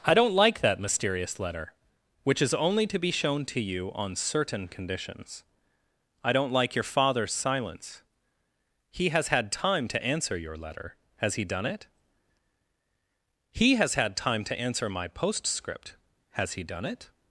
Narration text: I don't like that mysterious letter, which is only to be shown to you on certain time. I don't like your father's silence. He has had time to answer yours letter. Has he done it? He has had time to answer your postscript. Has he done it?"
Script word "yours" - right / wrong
wrong